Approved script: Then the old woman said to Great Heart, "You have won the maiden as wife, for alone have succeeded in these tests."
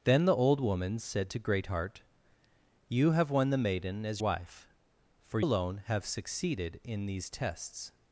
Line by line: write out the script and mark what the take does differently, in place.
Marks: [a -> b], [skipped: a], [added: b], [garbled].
Then the old woman said to Great Heart, "You have won the maiden as wife, for alone have succeeded in these tests."